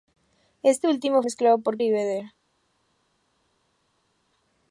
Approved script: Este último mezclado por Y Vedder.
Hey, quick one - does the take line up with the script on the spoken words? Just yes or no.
yes